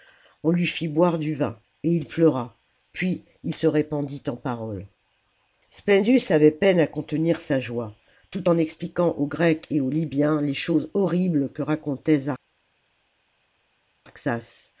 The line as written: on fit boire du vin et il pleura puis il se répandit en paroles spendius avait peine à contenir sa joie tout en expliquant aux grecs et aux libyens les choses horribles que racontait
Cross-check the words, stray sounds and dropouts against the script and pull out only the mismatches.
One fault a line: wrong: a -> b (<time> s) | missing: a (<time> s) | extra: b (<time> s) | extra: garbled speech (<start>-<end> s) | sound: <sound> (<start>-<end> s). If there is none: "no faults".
extra: lui (0.5 s)